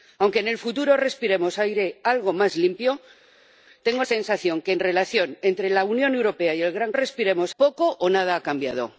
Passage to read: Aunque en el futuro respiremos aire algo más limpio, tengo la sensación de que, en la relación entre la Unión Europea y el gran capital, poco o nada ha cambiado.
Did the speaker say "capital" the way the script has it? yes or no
no